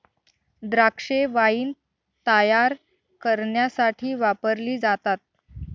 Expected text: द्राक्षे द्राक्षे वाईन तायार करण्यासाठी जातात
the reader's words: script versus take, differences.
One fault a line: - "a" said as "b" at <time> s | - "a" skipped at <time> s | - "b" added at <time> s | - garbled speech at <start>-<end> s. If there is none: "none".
- "द्राक्षे" skipped at 1.2 s
- "वापरली" added at 4.2 s